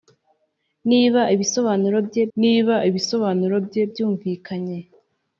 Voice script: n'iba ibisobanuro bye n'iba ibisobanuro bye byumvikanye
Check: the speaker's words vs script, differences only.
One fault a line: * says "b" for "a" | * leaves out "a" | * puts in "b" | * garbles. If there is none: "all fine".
all fine